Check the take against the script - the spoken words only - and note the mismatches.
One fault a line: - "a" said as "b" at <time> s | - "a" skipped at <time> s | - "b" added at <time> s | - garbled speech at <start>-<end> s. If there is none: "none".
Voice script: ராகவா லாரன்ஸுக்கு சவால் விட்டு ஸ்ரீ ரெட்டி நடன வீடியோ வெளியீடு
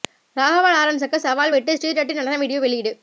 none